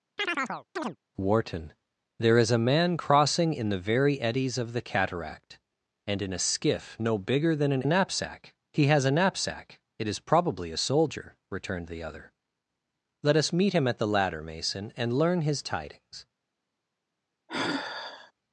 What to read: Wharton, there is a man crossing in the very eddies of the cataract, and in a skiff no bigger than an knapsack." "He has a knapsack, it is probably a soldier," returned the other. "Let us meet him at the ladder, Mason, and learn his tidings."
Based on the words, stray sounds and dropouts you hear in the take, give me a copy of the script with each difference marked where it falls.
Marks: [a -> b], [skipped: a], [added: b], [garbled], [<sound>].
[chirp] Wharton, there is a man crossing in the very eddies of the cataract, and in a skiff no bigger than an knapsack." "He has a knapsack, it is probably a soldier," returned the other. "Let us meet him at the ladder, Mason, and learn his tidings." [sigh]